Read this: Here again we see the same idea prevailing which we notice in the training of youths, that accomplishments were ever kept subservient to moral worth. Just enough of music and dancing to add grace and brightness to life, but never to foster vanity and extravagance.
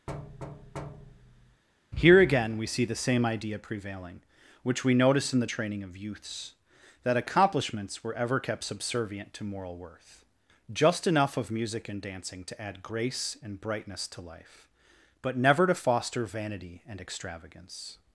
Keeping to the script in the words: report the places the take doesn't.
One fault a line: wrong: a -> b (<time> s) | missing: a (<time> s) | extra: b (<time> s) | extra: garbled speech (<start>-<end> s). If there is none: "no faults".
no faults